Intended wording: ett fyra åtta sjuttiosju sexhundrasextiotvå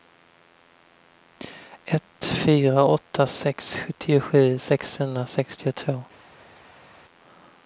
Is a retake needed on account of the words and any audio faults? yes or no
yes